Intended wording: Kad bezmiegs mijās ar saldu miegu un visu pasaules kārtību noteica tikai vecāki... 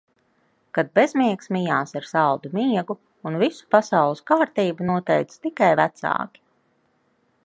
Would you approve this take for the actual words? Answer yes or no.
yes